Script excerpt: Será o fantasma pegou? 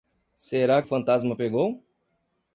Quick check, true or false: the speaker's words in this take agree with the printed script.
true